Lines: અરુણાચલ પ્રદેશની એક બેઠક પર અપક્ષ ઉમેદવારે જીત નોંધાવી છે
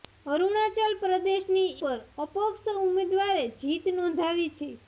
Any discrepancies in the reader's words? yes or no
yes